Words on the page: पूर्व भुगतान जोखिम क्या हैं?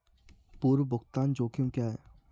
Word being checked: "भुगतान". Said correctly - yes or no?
yes